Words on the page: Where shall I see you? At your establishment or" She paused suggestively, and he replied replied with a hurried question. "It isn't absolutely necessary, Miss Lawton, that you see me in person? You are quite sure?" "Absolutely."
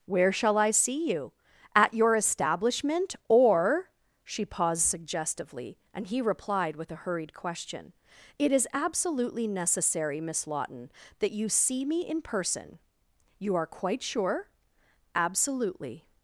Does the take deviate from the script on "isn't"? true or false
true